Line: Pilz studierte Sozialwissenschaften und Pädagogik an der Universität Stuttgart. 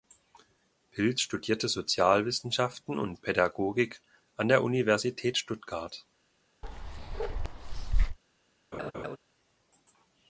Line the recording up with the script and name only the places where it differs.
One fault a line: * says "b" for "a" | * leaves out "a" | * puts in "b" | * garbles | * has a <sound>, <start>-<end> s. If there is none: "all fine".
* has a bark, 6.6-8.2 s
* has a laugh, 8.7-9.2 s